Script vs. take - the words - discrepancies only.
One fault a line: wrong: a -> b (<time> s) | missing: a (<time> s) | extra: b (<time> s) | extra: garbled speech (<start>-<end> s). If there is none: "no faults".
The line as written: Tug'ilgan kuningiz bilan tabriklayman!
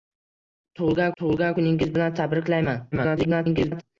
extra: tug'ilgan (1.2 s)
extra: garbled speech (2.9-3.8 s)